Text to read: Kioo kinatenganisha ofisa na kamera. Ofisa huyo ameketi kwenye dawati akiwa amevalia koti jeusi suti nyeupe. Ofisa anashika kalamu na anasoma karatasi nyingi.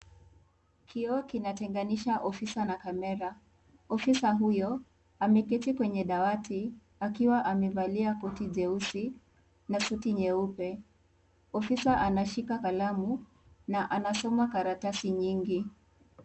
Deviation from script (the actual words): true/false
true